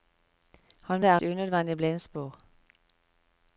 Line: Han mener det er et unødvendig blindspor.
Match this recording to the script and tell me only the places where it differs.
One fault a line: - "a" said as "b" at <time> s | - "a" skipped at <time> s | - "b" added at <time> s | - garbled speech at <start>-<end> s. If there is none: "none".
- "mener" skipped at 1.0 s
- "et" skipped at 1.2 s